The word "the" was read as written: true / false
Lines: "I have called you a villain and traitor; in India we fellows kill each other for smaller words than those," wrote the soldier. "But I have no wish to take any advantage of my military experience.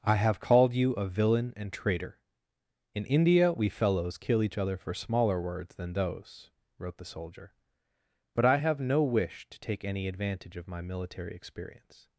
true